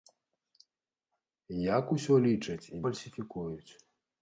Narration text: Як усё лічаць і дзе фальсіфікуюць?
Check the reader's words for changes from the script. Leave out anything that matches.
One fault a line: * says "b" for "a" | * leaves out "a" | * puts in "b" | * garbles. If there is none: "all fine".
* leaves out "дзе"